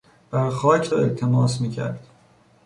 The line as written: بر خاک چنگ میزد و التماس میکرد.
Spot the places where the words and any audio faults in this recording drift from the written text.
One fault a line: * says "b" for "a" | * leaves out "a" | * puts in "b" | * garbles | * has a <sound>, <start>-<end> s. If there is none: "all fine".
* leaves out "چنگ میزد"